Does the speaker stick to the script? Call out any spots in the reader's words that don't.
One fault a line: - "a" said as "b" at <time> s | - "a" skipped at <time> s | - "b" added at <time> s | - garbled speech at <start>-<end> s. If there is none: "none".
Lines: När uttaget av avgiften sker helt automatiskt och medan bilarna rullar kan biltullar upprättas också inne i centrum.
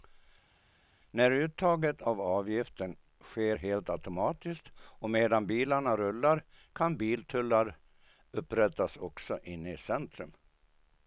none